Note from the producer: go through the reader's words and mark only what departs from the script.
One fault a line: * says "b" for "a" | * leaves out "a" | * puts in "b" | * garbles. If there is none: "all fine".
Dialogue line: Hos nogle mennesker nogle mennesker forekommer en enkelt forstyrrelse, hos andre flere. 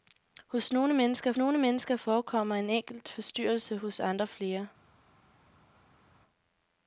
all fine